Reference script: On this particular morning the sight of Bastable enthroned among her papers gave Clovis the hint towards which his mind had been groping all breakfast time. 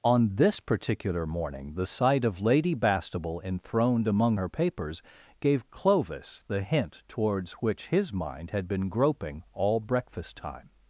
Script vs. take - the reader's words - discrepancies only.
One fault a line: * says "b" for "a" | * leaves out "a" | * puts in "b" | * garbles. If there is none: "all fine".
* puts in "Lady"